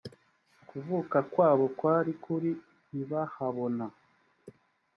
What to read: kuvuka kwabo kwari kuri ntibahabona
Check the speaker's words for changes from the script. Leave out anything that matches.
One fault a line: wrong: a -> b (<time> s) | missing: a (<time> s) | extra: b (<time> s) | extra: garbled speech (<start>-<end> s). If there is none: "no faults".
no faults